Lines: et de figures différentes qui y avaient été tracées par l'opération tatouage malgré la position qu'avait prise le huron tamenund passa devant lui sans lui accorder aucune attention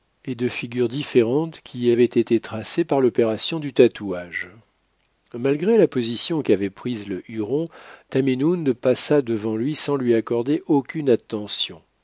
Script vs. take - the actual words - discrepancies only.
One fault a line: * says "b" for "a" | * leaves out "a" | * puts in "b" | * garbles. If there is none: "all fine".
* puts in "du"